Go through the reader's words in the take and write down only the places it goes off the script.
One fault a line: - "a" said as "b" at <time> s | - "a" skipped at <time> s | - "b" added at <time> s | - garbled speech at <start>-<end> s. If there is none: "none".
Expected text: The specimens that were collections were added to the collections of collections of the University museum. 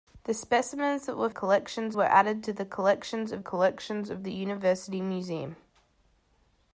none